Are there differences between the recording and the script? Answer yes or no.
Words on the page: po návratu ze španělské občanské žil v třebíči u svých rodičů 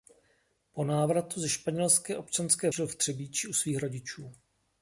no